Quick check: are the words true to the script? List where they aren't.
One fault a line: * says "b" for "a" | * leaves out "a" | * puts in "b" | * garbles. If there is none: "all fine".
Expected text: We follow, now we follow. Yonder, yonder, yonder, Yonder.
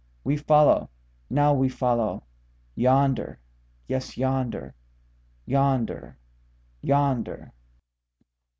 * puts in "yes"